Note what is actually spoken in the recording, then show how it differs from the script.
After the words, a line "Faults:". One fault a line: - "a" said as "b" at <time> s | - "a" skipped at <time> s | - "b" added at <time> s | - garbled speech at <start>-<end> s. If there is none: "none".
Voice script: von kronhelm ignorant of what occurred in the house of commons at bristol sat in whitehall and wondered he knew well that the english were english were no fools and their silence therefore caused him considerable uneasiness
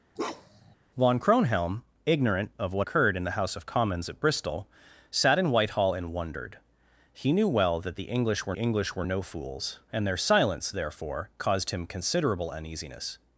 von kronhelm ignorant of what occurred in the house of commons at bristol sat in whitehall and wondered he knew well that the english were english were no fools and their silence therefore caused him considerable uneasiness
Faults:
none